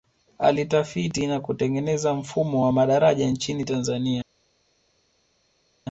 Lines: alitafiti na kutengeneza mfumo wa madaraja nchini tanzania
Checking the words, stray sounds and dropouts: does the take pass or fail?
pass